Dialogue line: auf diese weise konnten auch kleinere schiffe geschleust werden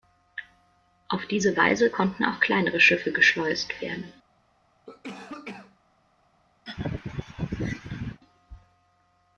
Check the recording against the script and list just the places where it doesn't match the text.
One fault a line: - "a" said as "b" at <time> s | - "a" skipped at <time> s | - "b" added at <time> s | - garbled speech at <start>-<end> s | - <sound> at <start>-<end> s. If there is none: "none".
- cough at 4.9-5.8 s
- laugh at 6.7-8.2 s